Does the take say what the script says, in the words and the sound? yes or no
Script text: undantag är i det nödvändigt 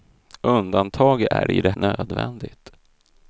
yes